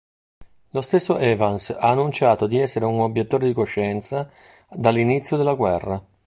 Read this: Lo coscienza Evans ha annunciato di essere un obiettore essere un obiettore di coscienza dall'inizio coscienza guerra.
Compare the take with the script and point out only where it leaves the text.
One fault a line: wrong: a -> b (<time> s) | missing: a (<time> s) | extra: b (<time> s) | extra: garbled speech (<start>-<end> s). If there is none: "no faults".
wrong: coscienza -> stesso (0.8 s)
missing: essere un obiettore (3.5 s)
wrong: coscienza -> della (5.4 s)